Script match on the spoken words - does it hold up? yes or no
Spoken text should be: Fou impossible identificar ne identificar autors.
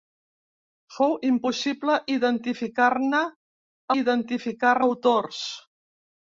yes